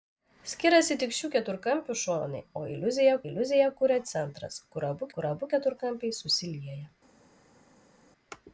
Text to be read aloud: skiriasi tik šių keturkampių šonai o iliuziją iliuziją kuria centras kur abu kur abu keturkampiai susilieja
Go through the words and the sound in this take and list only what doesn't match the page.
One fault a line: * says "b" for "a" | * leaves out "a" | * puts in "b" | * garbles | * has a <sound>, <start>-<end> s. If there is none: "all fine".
all fine